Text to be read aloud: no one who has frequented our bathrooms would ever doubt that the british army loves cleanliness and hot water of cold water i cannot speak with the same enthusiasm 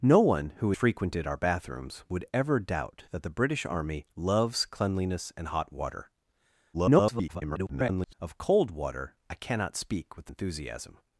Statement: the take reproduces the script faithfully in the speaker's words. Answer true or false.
false